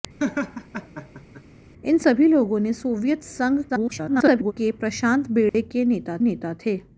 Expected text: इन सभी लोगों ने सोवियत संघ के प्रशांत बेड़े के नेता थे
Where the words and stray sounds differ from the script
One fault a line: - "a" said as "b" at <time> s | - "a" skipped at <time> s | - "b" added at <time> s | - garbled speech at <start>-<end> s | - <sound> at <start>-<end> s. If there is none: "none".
- laugh at 0.2-1.4 s
- garbled speech at 3.7-4.5 s
- dropout at 5.5-5.5 s
- "नेता" added at 6.2 s